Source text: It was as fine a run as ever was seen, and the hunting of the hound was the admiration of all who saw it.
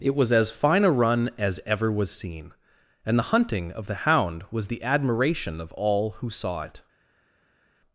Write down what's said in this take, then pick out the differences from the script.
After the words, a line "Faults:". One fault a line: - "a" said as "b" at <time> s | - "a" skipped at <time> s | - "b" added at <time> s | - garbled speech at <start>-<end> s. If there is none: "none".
It was as fine a run as ever was seen, and the hunting of the hound was the admiration of all who saw it.
Faults:
none